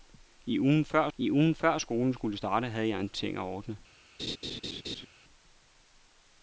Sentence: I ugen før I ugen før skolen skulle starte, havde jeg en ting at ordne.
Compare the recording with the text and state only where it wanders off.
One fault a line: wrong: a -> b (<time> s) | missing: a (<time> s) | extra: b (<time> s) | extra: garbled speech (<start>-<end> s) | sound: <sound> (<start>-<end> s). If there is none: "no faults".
sound: laugh (4.2-5.1 s)